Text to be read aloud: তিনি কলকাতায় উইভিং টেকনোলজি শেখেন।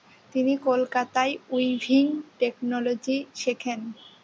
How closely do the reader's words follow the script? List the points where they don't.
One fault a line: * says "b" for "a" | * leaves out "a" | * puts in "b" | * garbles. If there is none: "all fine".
all fine